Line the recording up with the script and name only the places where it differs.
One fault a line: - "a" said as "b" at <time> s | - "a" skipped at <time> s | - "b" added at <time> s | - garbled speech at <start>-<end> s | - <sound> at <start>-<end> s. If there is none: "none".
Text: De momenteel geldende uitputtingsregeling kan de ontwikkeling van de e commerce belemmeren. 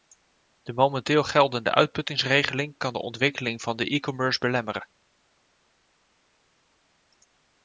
none